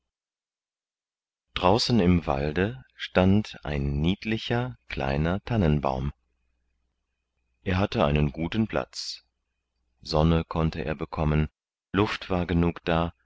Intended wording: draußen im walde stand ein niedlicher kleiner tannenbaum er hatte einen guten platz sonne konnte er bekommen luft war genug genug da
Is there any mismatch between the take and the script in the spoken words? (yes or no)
yes